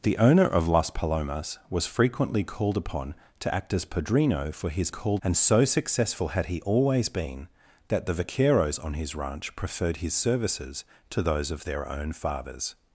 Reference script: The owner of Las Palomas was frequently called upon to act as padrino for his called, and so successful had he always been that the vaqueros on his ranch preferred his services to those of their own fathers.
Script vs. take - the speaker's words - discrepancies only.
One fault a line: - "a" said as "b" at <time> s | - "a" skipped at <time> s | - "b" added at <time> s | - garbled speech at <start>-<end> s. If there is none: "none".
none